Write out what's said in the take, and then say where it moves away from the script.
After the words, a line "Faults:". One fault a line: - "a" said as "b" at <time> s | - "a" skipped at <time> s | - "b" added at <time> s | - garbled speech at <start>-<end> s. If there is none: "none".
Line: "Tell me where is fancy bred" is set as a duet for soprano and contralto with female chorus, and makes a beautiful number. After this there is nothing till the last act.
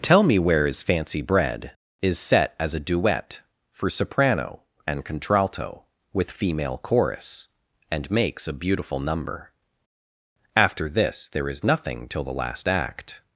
"Tell me where is fancy bred" is set as a duet for soprano and contralto with female chorus, and makes a beautiful number. After this there is nothing till the last act.
Faults:
none